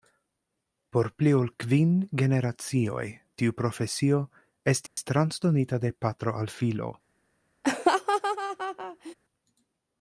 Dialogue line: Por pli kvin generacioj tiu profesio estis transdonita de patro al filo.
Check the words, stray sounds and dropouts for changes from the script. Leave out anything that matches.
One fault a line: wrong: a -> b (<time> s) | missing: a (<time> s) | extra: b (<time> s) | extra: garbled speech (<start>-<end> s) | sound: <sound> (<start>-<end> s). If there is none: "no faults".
extra: ol (1.4 s)
sound: dropout (4.9-5.0 s)
sound: laugh (7.6-9.1 s)